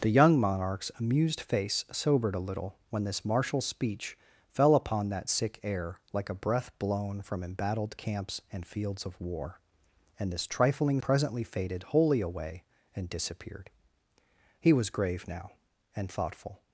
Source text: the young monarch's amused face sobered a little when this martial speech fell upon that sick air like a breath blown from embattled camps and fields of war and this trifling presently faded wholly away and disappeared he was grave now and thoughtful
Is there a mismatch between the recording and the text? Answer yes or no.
no